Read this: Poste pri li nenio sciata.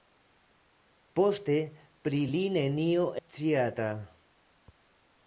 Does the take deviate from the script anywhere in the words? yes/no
no